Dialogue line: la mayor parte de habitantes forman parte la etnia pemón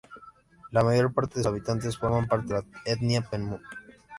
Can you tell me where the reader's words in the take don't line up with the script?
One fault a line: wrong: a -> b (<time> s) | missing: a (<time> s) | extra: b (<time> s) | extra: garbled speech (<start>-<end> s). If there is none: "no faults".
no faults